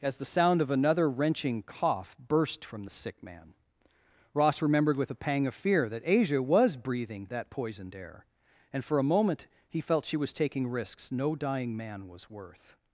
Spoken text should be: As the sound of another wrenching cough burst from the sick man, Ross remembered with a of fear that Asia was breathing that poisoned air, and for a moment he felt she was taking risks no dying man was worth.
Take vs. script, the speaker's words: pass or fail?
fail